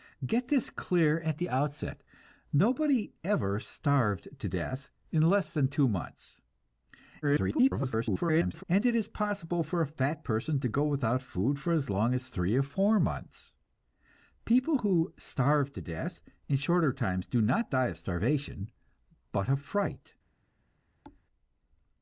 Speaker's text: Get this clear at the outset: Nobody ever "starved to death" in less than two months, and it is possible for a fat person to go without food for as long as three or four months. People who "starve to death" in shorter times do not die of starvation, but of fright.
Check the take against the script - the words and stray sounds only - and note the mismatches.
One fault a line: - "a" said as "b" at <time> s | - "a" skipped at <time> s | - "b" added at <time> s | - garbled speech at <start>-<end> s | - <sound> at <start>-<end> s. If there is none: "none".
- garbled speech at 7.2-8.6 s
- thud at 21.0-21.2 s